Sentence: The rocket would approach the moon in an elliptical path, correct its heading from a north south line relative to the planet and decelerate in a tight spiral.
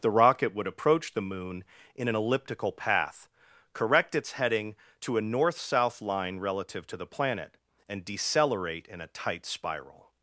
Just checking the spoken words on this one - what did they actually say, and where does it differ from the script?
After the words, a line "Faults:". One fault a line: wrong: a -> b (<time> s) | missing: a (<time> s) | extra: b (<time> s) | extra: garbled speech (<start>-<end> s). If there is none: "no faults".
The rocket would approach the moon in an elliptical path, correct its heading to a north south line relative to the planet and decelerate in a tight spiral.
Faults:
wrong: from -> to (5.0 s)